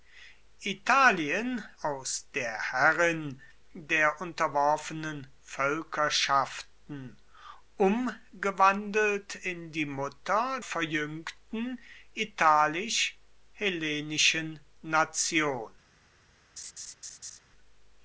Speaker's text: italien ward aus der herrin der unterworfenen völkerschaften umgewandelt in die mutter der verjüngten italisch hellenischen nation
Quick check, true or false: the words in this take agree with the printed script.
false